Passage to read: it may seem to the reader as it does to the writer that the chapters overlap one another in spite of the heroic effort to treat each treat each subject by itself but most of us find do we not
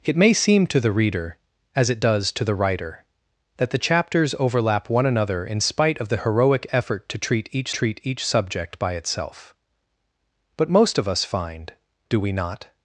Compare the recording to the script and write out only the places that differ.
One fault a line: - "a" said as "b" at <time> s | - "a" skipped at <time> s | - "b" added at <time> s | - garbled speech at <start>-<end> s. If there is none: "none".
none